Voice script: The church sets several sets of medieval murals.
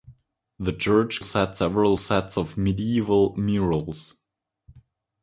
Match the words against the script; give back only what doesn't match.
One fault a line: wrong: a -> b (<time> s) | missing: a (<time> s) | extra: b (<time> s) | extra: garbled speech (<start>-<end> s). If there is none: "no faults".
no faults